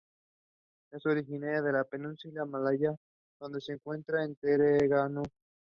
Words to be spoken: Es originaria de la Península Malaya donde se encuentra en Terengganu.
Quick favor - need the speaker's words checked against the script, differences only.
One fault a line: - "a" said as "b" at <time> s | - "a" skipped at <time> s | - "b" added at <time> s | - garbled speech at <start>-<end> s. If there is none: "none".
none